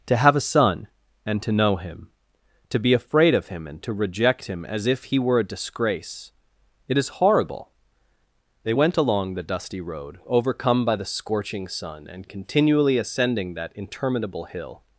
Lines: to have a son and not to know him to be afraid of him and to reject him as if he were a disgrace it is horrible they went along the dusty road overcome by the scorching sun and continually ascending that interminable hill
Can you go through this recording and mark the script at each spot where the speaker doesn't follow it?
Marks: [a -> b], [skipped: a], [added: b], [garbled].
to have a son and [skipped: not] to know him to be afraid of him and to reject him as if he were a disgrace it is horrible they went along the dusty road overcome by the scorching sun and continually ascending that interminable hill